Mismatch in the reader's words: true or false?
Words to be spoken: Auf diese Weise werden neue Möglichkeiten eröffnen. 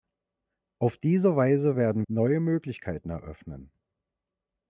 false